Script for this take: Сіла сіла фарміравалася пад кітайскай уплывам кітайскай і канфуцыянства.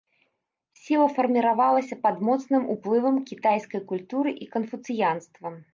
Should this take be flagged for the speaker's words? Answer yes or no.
yes